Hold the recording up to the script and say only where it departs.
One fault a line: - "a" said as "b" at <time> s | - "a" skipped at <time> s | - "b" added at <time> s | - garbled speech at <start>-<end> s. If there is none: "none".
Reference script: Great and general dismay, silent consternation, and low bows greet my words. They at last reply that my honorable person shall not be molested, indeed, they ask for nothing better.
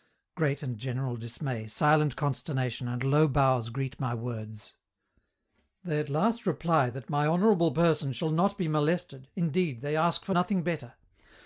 none